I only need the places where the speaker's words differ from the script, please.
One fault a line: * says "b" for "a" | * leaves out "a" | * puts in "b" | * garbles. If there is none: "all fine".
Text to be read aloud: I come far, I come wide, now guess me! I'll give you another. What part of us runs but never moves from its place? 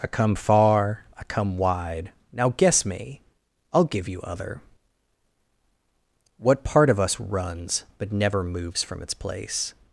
* says "other" for "another"